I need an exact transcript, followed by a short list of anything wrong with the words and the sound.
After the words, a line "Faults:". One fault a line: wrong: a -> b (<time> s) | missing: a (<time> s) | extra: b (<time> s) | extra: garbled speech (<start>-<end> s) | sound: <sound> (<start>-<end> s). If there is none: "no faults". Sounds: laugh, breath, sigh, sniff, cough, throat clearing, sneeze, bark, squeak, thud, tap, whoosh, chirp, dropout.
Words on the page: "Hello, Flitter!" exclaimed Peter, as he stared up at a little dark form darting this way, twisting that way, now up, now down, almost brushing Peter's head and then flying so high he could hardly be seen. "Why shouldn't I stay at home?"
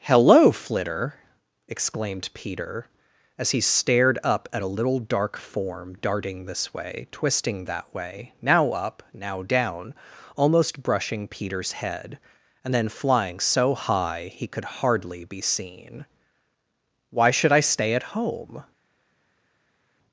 "Hello, Flitter!" exclaimed Peter, as he stared up at a little dark form darting this way, twisting that way, now up, now down, almost brushing Peter's head and then flying so high he could hardly be seen. "Why should I stay at home?"
Faults:
wrong: shouldn't -> should (17.3 s)